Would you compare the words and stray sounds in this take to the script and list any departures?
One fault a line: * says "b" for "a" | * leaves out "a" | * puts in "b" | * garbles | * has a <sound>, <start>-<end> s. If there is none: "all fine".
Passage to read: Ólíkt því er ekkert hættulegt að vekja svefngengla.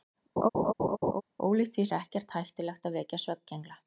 * has a laugh, 0.4-1.2 s